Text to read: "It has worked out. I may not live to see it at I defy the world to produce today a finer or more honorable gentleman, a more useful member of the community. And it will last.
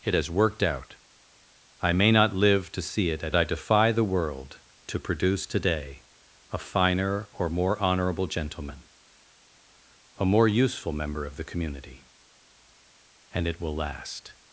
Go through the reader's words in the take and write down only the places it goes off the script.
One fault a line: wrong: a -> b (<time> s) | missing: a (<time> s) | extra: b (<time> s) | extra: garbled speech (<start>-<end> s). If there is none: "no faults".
no faults